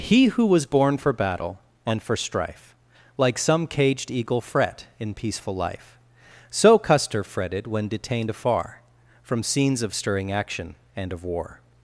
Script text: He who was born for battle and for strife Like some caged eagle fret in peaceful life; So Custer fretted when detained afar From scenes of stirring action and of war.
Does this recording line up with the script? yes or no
yes